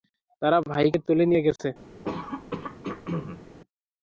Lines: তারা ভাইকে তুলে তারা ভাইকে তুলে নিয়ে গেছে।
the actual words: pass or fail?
fail